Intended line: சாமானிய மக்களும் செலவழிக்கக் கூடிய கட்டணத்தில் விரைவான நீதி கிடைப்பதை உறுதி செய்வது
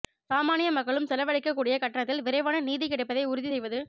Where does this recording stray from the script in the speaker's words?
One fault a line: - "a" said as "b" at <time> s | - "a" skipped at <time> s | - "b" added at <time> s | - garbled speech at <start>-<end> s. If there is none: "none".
none